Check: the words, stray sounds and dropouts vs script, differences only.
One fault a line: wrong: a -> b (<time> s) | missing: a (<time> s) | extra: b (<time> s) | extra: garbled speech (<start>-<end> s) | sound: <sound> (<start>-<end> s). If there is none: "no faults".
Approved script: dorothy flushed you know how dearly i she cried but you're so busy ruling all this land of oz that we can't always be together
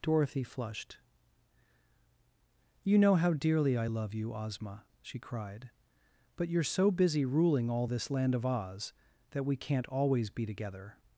extra: love you ozma (3.8 s)